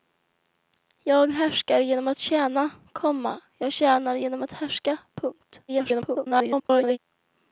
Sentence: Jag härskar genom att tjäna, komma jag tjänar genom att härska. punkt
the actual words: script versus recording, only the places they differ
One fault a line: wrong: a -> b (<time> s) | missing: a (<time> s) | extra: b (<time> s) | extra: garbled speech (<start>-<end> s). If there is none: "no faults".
extra: garbled speech (5.7-7.0 s)